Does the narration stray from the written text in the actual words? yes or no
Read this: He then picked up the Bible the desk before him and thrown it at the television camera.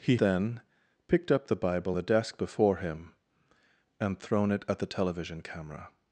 no